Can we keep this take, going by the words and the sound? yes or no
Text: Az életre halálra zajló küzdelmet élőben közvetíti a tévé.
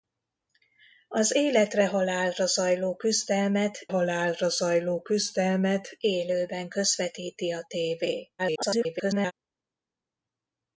no